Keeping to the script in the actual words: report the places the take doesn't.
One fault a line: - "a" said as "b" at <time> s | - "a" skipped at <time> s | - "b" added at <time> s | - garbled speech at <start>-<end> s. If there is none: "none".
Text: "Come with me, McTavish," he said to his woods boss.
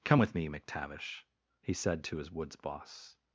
none